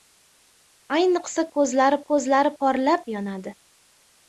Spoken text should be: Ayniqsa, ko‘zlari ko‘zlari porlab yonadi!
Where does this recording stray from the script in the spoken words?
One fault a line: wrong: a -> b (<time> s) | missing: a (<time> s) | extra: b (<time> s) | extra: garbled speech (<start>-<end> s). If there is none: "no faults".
no faults